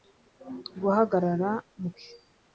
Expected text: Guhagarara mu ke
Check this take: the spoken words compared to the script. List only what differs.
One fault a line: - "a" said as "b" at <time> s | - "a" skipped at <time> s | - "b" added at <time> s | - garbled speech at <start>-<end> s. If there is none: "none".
none